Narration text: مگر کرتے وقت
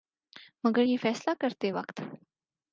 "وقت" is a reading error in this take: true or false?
false